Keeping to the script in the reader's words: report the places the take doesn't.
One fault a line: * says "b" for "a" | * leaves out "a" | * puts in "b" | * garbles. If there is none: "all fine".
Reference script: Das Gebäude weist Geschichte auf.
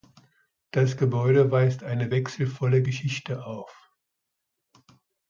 * puts in "eine wechselvolle"